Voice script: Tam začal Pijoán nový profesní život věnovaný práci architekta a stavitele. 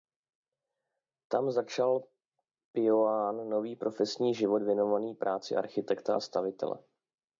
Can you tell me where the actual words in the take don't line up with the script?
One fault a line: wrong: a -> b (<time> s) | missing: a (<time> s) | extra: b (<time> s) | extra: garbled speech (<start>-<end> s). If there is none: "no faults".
no faults